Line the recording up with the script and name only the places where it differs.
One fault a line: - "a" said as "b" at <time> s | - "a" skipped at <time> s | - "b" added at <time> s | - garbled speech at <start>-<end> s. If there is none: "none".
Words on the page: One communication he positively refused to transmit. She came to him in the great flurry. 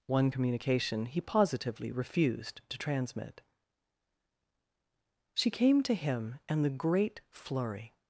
none